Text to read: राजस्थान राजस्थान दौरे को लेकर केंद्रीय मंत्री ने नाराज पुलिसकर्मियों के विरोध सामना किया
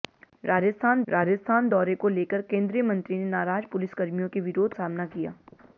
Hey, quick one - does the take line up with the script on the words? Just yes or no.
yes